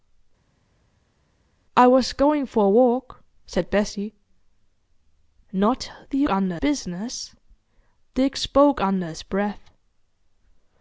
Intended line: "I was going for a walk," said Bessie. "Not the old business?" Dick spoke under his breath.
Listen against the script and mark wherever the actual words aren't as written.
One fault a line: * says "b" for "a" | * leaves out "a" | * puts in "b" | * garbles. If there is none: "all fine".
* says "under" for "old"